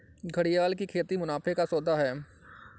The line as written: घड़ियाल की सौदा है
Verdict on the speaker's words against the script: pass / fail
fail